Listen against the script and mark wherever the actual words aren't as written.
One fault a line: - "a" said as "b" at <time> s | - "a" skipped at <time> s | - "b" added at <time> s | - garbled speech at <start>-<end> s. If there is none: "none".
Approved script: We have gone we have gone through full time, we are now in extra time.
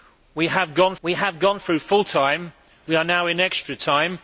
none